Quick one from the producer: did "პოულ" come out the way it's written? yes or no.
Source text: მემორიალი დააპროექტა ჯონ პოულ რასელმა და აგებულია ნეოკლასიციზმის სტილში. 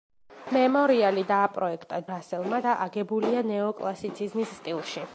no